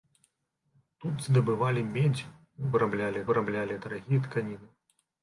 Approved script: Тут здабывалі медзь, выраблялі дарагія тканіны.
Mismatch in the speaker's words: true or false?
true